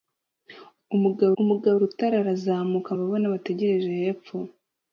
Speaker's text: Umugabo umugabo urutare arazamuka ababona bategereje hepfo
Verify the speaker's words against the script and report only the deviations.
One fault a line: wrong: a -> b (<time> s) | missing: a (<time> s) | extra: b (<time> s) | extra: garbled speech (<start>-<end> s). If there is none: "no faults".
no faults